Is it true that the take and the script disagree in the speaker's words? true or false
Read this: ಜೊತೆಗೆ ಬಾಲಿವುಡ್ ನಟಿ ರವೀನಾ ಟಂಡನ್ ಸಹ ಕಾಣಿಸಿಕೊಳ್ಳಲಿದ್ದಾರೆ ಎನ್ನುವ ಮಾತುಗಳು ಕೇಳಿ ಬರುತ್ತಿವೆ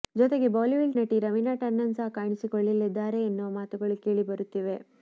false